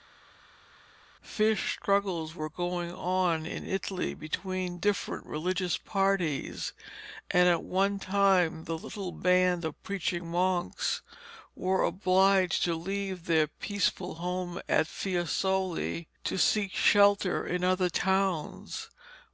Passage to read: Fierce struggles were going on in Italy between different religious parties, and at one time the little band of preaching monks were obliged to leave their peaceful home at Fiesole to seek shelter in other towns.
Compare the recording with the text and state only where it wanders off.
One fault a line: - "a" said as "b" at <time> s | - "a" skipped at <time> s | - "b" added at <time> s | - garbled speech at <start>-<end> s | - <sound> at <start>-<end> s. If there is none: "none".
none